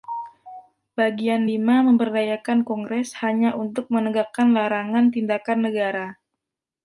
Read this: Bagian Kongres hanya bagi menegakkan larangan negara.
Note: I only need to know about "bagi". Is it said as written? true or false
false